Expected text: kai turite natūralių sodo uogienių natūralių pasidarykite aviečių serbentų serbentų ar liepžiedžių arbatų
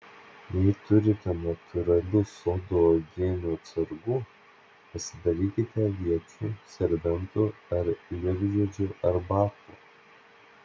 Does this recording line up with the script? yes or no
no